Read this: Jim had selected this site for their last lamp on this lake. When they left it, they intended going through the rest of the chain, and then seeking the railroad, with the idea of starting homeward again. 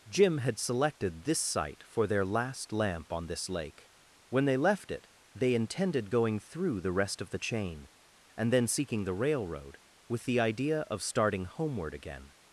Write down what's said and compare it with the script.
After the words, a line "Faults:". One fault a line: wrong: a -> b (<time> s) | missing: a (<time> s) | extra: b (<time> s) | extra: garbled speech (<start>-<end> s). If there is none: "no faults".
Jim had selected this site for their last lamp on this lake. When they left it, they intended going through the rest of the chain, and then seeking the railroad, with the idea of starting homeward again.
Faults:
no faults